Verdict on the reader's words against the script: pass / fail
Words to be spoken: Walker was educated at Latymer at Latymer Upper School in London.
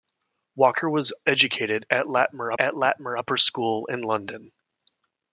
pass